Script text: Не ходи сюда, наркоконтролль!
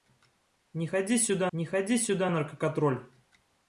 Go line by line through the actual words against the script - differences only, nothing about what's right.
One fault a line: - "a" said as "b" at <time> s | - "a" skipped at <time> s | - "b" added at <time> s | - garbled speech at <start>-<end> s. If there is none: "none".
- "не ходи сюда" added at 1.5 s